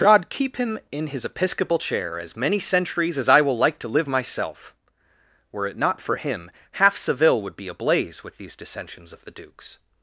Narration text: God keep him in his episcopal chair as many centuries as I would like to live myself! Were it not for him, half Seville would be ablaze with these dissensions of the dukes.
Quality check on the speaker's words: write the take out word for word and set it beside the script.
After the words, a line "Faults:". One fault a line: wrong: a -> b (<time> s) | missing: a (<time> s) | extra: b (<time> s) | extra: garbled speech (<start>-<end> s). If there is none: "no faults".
God keep him in his episcopal chair as many centuries as I will like to live myself! Were it not for him, half Seville would be ablaze with these dissensions of the dukes.
Faults:
wrong: would -> will (3.4 s)